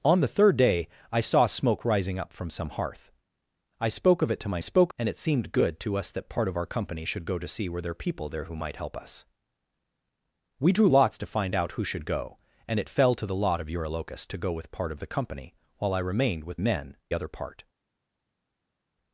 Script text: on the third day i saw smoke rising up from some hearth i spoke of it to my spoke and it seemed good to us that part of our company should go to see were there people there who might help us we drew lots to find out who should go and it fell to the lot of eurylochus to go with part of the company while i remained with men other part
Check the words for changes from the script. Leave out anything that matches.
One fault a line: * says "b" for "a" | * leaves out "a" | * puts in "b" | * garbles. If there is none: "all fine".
all fine